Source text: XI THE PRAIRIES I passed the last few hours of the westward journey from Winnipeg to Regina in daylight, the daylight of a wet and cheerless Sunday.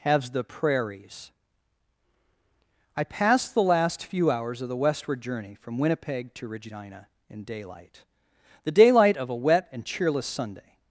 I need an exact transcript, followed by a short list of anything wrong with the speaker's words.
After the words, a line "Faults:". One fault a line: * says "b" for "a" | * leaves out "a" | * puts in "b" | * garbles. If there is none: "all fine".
Has THE PRAIRIES I passed the last few hours of the westward journey from Winnipeg to Regina in daylight, the daylight of a wet and cheerless Sunday.
Faults:
* says "Has" for "XI"